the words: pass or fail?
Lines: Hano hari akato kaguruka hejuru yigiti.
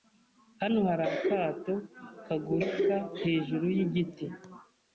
pass